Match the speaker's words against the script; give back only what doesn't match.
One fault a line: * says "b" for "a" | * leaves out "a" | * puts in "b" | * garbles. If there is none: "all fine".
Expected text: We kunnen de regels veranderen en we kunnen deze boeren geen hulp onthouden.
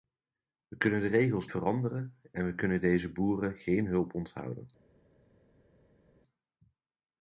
all fine